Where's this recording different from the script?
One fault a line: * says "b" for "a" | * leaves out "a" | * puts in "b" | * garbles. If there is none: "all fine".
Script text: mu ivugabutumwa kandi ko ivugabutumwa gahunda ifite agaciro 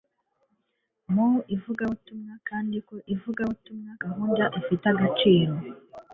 all fine